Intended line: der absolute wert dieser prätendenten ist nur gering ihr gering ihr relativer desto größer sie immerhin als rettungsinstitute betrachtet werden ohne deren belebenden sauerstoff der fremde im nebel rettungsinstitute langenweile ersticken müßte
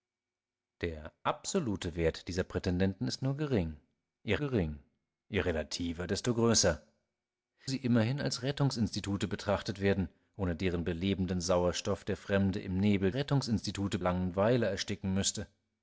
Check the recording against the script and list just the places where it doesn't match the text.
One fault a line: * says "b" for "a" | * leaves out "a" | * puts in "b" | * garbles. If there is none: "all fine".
all fine